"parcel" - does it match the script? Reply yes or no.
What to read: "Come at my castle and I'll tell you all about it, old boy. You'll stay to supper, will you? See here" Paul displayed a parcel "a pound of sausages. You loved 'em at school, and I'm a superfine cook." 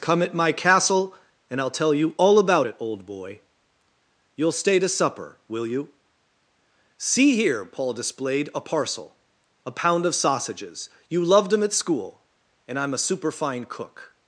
yes